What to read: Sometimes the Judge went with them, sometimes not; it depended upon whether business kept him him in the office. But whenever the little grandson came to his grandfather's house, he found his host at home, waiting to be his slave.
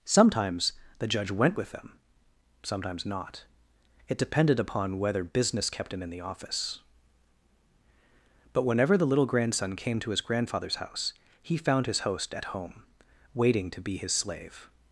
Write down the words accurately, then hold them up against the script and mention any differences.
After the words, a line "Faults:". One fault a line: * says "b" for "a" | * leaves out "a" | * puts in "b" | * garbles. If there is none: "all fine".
Sometimes the Judge went with them, sometimes not; it depended upon whether business kept him in the office. But whenever the little grandson came to his grandfather's house, he found his host at home, waiting to be his slave.
Faults:
* leaves out "him"